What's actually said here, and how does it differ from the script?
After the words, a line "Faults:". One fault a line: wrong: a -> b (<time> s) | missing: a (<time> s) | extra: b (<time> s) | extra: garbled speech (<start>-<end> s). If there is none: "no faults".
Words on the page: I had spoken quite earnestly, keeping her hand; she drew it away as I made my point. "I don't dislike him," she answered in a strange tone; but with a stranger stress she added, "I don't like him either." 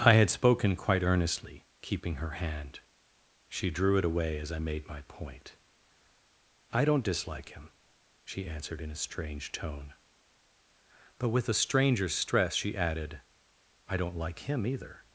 I had spoken quite earnestly, keeping her hand; she drew it away as I made my point. "I don't dislike him," she answered in a strange tone; but with a stranger stress she added, "I don't like him either."
Faults:
no faults